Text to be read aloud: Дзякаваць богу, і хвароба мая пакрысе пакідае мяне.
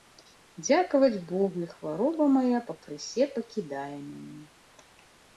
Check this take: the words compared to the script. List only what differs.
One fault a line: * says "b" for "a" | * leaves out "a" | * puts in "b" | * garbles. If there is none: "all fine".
all fine